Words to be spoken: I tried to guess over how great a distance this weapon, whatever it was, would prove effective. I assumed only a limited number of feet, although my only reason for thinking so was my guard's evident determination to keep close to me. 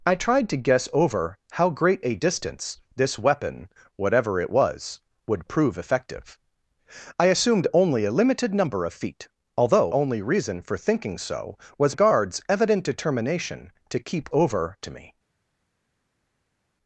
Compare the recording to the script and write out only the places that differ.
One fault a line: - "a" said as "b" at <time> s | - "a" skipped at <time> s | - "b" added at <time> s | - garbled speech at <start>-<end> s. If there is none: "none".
- "my" skipped at 9.9 s
- "my" skipped at 12.0 s
- "close" said as "over" at 14.3 s